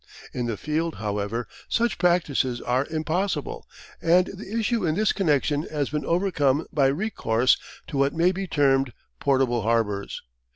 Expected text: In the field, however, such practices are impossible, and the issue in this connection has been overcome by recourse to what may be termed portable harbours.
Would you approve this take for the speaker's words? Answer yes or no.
yes